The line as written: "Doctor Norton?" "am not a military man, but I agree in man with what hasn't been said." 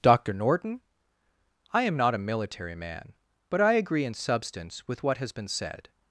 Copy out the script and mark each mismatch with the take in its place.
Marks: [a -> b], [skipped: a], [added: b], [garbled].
"Doctor Norton?" [added: I] "am not a military man, but I agree in [man -> substance] with what [hasn't -> has] been said."